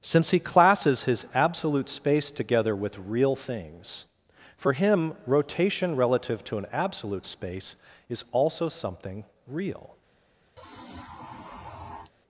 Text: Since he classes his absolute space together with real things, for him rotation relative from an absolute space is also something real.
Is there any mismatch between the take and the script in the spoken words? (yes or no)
yes